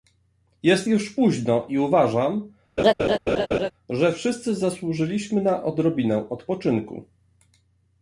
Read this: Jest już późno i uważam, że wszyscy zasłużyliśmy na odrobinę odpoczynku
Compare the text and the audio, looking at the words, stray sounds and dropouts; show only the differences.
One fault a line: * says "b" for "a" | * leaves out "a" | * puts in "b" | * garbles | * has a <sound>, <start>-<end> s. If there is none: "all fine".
* has a laugh, 2.8-3.7 s